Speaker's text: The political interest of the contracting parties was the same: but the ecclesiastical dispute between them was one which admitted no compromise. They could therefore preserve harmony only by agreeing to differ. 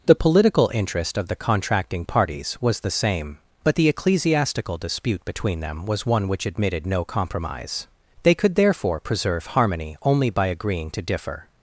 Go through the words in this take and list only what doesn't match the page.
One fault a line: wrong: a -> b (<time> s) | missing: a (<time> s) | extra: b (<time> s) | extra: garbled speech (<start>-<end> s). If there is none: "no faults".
no faults